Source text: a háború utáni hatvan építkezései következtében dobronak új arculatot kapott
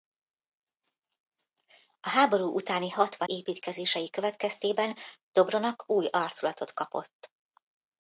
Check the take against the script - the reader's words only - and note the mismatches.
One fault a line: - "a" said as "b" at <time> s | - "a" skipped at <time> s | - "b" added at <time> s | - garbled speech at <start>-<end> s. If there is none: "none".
none